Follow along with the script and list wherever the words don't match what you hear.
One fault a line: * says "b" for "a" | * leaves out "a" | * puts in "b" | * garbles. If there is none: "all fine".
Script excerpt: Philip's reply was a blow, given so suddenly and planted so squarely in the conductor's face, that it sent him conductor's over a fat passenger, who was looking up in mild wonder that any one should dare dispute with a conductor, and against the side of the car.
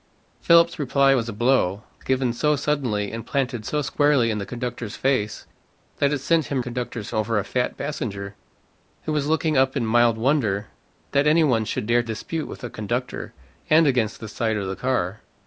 all fine